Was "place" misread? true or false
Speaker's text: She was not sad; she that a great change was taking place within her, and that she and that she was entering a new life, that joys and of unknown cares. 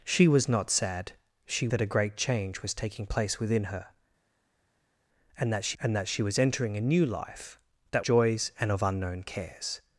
false